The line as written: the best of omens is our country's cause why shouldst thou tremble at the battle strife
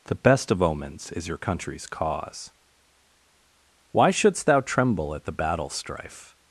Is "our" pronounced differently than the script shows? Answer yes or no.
yes